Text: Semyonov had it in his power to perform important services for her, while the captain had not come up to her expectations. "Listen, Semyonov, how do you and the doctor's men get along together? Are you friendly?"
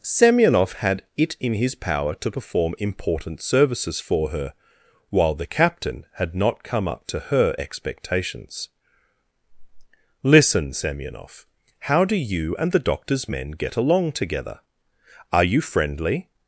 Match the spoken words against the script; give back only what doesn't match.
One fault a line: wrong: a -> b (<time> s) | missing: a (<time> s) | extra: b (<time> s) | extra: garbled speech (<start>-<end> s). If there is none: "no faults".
no faults